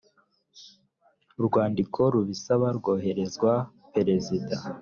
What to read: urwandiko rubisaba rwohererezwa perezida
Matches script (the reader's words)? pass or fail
pass